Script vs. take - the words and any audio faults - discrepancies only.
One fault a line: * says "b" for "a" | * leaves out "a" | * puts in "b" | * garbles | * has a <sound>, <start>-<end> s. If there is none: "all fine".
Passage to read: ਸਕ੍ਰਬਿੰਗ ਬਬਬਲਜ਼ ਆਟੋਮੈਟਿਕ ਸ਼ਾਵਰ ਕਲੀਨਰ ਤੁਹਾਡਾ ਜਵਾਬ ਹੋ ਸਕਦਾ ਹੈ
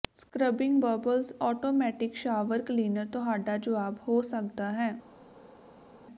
all fine